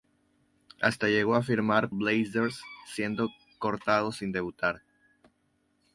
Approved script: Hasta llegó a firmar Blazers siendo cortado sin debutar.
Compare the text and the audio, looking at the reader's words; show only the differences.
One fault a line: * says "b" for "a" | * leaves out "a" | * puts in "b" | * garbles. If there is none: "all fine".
all fine